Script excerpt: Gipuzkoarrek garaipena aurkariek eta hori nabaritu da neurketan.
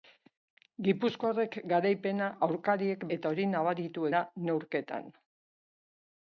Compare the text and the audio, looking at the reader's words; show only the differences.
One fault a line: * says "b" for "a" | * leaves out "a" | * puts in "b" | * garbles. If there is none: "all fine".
all fine